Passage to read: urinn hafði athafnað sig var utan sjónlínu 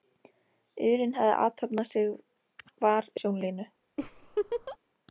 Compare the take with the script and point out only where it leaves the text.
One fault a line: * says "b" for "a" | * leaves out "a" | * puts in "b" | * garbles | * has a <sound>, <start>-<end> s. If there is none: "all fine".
* leaves out "utan"
* has a laugh, 4.0-4.8 s